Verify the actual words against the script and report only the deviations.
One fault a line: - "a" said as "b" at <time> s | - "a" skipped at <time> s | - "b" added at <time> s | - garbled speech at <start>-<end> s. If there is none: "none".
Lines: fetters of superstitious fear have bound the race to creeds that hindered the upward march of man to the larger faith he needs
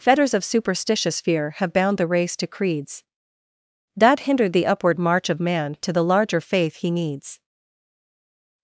none